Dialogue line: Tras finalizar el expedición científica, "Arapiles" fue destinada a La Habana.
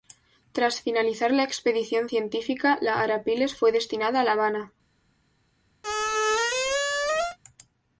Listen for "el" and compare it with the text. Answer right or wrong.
wrong